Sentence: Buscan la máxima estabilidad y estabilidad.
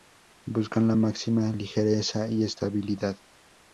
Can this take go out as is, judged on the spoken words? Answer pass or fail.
fail